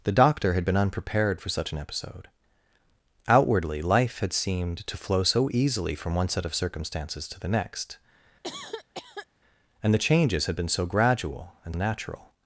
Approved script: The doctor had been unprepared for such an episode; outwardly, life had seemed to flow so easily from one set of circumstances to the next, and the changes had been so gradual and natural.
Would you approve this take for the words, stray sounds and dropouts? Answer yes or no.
no